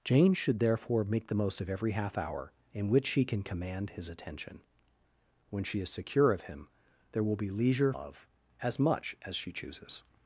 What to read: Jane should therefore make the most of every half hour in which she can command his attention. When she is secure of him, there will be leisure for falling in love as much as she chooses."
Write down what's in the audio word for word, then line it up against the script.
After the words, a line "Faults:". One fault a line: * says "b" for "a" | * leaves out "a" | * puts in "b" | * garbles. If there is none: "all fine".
Jane should therefore make the most of every half hour in which she can command his attention. When she is secure of him, there will be leisure love as much as she chooses."
Faults:
* leaves out "for falling in"